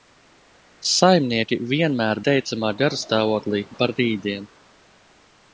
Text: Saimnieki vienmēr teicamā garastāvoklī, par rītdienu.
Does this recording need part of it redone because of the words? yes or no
no